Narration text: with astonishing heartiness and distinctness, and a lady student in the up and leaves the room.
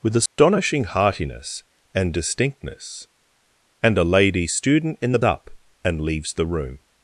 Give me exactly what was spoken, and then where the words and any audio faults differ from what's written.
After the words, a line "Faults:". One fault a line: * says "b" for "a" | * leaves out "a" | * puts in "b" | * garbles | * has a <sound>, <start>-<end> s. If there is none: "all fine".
with astonishing heartiness and distinctness, and a lady student in the up and leaves the room.
Faults:
* has a dropout, 0.3-0.4 s